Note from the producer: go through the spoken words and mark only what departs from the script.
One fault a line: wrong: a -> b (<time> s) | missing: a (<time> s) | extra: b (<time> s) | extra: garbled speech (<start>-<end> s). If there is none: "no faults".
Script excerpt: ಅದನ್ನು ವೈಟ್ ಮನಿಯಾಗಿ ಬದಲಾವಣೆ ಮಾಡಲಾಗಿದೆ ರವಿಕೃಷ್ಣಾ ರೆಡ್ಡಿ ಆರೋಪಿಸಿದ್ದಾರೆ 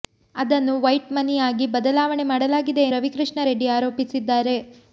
no faults